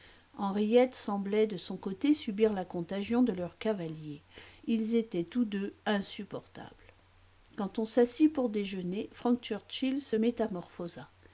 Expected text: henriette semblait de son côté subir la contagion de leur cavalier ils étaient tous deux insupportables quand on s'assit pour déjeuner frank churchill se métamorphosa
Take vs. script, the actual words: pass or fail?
pass